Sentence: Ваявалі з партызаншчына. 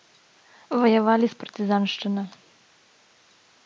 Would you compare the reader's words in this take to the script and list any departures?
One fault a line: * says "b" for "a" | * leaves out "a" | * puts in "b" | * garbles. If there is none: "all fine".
all fine